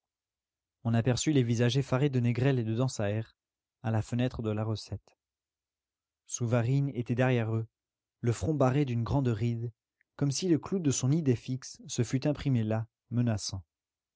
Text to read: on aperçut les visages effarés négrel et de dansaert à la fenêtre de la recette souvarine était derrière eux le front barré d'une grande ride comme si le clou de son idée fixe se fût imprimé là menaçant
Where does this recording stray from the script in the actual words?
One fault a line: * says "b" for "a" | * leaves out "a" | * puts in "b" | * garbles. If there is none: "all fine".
* puts in "de"